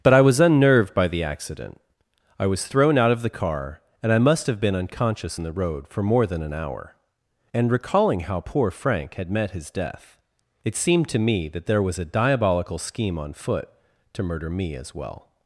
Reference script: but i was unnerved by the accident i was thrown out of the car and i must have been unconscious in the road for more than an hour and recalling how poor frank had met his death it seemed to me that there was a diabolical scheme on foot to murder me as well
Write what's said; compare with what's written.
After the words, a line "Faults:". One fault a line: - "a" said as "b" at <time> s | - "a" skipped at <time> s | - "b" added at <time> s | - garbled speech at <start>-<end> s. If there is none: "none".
but i was unnerved by the accident i was thrown out of the car and i must have been unconscious in the road for more than an hour and recalling how poor frank had met his death it seemed to me that there was a diabolical scheme on foot to murder me as well
Faults:
none